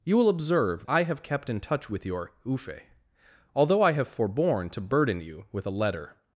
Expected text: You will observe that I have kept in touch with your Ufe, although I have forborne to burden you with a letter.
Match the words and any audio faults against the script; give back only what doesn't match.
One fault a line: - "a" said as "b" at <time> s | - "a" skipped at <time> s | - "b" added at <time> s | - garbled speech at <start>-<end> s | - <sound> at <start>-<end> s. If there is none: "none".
- "that" skipped at 0.9 s